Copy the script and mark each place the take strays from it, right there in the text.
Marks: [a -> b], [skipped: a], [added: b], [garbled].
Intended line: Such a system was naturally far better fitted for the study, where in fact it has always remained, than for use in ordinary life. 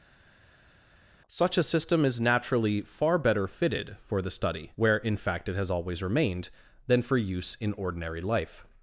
Such a system [was -> is] naturally far better fitted for the study, where in fact it has always remained, than for use in ordinary life.